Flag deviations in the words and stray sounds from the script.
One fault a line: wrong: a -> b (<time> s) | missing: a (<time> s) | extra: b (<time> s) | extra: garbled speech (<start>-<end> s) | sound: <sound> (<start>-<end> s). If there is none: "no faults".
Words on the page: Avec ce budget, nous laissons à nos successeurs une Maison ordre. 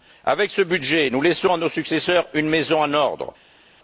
extra: en (2.8 s)